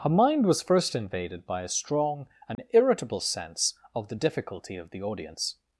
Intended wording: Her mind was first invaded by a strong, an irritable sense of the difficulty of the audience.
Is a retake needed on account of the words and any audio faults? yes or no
yes